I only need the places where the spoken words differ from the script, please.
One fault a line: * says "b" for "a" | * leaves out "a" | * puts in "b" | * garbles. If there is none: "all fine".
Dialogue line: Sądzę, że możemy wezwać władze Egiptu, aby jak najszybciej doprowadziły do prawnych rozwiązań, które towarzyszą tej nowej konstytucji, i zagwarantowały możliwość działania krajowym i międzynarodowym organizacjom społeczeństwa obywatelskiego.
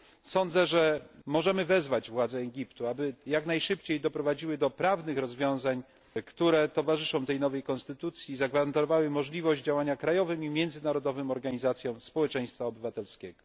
all fine